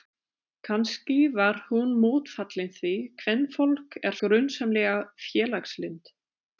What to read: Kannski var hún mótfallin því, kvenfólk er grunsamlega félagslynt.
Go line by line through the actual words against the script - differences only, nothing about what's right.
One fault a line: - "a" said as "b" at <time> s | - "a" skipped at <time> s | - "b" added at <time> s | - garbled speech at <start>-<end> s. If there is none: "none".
none